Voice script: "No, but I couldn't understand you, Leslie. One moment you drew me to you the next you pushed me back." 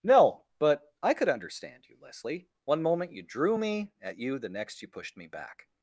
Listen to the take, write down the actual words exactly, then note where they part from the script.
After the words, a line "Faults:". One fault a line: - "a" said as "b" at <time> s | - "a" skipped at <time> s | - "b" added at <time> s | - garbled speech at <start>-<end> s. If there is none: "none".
"No, but I could understand you, Leslie. One moment you drew me at you the next you pushed me back."
Faults:
- "couldn't" said as "could" at 1.1 s
- "to" said as "at" at 4.0 s